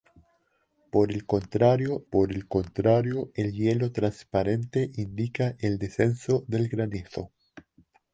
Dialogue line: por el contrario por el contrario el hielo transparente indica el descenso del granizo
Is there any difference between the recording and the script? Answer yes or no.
no